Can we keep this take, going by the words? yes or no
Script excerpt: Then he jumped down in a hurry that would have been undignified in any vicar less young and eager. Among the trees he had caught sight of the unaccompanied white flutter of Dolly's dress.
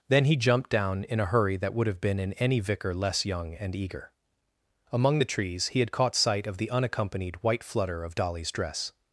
no